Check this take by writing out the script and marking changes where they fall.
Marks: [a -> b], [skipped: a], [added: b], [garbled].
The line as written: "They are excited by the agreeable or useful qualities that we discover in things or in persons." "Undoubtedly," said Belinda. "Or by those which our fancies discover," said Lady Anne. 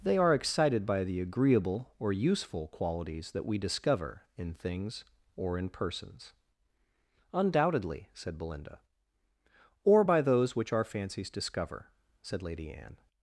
"They are excited by the agreeable or useful qualities that we discover in things or in persons." "Undoubtedly," said Belinda. "Or by those which our fancies discover," said Lady Anne.